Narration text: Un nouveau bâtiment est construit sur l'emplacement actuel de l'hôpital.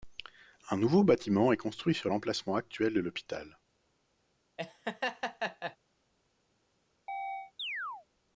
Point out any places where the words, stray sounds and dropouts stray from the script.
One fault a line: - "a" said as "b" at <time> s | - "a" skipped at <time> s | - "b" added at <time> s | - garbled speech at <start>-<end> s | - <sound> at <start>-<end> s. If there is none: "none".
- laugh at 4.6-5.8 s
- chirp at 7.1-8.1 s